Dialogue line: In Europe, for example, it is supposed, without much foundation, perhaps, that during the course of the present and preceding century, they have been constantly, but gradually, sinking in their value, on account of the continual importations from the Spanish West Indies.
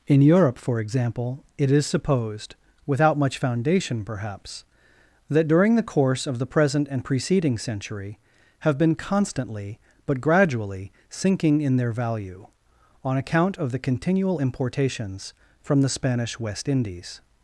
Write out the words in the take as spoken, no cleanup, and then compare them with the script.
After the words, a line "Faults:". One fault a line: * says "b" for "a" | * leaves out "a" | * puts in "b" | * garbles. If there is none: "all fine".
In Europe, for example, it is supposed, without much foundation, perhaps, that during the course of the present and preceding century, have been constantly, but gradually, sinking in their value, on account of the continual importations from the Spanish West Indies.
Faults:
* leaves out "they"